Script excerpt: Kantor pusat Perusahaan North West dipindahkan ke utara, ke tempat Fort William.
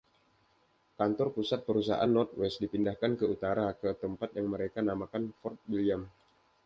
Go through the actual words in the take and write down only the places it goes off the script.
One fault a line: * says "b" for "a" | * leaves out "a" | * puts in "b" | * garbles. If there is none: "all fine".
* puts in "yang mereka namakan"